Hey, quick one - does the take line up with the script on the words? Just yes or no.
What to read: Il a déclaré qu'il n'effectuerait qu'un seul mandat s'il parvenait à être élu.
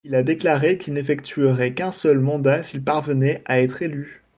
yes